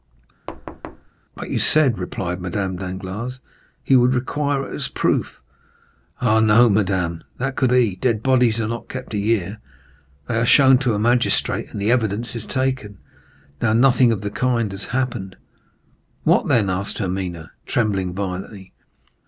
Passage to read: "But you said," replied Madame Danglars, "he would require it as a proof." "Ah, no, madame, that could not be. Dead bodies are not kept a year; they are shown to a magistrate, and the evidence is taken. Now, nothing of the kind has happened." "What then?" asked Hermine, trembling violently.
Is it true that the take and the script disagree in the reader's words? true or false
true